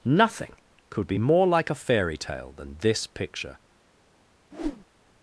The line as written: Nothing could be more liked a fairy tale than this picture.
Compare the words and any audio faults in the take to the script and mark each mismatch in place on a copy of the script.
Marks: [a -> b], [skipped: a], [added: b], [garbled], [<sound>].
Nothing could be more [liked -> like] a fairy tale than this picture. [whoosh]